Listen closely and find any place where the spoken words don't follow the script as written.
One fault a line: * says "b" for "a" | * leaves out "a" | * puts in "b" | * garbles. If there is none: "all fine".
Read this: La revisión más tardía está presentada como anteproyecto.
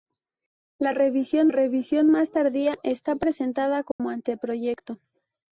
* puts in "revisión"